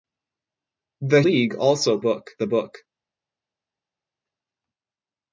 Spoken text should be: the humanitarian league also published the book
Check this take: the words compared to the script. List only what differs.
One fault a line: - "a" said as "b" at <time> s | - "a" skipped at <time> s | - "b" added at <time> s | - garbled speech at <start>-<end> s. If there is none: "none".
- "humanitarian" skipped at 1.2 s
- "published" said as "book" at 2.0 s